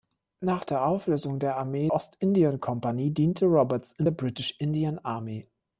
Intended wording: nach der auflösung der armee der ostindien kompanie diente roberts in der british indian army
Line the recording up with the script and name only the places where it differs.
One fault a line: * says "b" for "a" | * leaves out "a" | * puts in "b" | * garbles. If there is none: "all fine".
* leaves out "der"